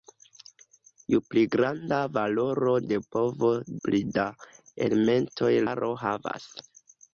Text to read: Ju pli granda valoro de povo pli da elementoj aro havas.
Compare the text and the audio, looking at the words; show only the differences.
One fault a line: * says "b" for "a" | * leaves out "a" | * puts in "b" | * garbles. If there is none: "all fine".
all fine